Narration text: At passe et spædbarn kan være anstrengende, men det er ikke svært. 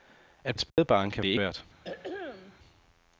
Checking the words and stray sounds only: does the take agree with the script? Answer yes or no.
no